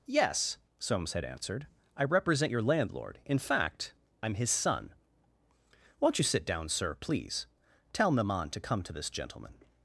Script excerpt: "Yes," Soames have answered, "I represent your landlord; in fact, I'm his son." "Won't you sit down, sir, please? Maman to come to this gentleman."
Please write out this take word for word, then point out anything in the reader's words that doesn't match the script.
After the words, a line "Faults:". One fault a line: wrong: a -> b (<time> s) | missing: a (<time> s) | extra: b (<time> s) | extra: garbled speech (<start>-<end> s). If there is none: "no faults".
"Yes," Soames had answered, "I represent your landlord; in fact, I'm his son." "Won't you sit down, sir, please? Tell Maman to come to this gentleman."
Faults:
wrong: have -> had (1.1 s)
extra: Tell (7.9 s)